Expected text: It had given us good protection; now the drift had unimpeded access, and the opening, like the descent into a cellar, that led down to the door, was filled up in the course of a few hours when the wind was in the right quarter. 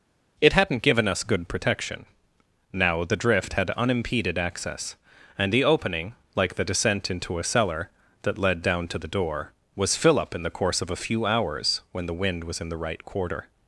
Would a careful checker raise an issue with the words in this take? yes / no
yes